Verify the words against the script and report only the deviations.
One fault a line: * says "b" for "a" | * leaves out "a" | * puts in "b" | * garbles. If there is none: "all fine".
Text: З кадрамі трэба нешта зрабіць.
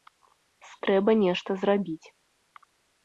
* leaves out "кадрамі"